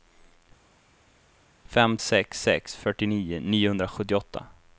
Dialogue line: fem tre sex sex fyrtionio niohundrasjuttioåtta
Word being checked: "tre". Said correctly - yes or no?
no